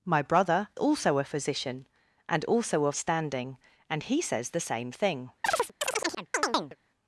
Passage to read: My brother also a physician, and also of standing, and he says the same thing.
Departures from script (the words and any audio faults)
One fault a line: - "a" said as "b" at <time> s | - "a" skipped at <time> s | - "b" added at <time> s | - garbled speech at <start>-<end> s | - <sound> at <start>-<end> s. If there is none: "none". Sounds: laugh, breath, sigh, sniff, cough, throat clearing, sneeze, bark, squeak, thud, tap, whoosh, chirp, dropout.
- chirp at 5.4-6.8 s